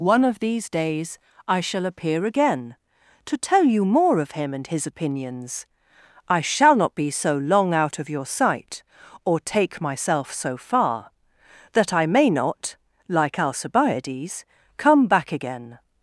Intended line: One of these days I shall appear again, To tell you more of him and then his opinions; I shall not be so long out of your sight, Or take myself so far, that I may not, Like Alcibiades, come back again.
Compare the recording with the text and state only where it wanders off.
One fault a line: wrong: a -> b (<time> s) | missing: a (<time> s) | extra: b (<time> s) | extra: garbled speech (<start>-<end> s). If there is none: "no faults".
missing: then (4.7 s)